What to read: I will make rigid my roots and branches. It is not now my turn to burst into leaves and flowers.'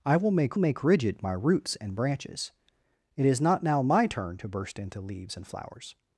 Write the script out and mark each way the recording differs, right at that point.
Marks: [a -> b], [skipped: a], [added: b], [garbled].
I will make [added: make] rigid my roots and branches. It is not now my turn to burst into leaves and flowers.'